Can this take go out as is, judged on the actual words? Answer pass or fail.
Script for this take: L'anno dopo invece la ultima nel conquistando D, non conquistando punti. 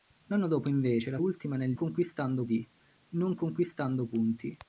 pass